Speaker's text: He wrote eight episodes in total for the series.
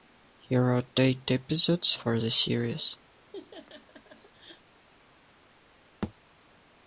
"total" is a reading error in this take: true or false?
true